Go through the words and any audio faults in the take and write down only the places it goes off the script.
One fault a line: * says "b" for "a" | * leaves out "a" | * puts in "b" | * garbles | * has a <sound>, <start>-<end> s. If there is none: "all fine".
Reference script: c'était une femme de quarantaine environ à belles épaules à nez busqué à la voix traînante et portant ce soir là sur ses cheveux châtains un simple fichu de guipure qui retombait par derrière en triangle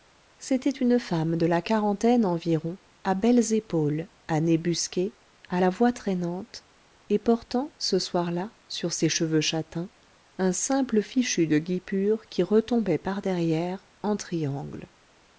* puts in "la"